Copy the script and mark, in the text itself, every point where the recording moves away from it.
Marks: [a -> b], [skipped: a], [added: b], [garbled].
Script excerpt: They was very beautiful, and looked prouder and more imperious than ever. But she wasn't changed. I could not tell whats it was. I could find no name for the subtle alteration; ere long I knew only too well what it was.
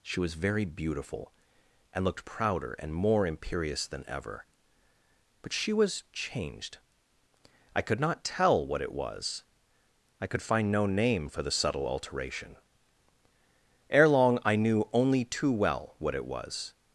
[They -> She] was very beautiful, and looked prouder and more imperious than ever. But she [wasn't -> was] changed. I could not tell [whats -> what] it was. I could find no name for the subtle alteration; ere long I knew only too well what it was.